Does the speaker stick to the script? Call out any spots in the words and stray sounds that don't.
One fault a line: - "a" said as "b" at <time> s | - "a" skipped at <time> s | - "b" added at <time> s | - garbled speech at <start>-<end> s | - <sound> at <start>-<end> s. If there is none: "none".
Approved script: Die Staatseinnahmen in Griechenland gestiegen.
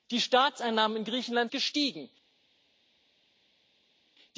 none